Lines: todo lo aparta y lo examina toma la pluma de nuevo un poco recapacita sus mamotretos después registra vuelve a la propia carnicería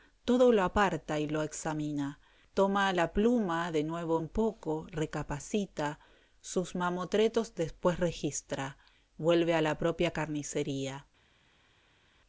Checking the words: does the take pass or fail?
pass